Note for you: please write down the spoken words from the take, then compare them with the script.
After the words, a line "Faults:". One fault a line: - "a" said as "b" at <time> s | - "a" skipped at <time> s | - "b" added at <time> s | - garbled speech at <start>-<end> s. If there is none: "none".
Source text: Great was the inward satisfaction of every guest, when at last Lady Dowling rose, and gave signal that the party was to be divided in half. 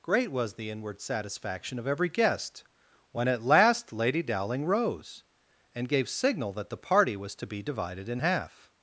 Great was the inward satisfaction of every guest, when at last Lady Dowling rose, and gave signal that the party was to be divided in half.
Faults:
none